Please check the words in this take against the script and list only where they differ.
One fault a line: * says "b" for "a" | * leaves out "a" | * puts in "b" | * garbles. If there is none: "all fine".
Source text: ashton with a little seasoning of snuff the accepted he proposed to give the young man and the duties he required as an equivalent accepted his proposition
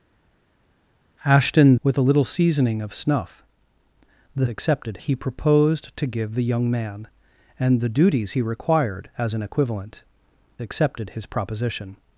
all fine